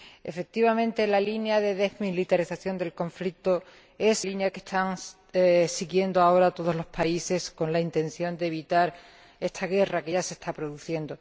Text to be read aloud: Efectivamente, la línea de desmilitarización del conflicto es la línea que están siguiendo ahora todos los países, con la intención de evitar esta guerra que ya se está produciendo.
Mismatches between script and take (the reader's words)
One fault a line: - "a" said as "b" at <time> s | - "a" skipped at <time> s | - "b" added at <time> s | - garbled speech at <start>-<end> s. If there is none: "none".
- "la" skipped at 4.2 s